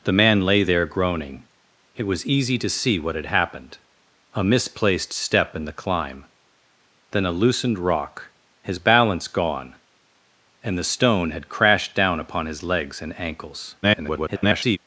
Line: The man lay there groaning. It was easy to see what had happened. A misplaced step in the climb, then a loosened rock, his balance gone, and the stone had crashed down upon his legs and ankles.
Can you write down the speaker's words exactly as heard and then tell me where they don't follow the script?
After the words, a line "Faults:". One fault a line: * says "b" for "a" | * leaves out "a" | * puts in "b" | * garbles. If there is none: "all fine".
The man lay there groaning. It was easy to see what had happened. A misplaced step in the climb, then a loosened rock, his balance gone, and the stone had crashed down upon his legs and ankles. [garbled]
Faults:
* garbles